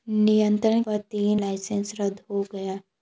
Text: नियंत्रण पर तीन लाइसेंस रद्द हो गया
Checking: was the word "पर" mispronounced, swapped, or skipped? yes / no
no